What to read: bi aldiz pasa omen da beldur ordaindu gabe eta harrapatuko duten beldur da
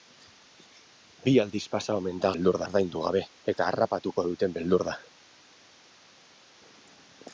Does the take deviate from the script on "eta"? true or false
false